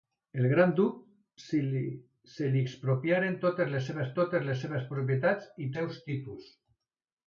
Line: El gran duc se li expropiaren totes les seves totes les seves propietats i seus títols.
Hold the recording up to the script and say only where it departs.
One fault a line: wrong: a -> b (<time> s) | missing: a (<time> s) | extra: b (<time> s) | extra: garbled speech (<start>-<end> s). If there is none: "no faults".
no faults